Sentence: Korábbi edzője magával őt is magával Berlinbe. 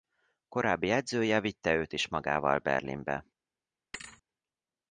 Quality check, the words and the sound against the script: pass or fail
fail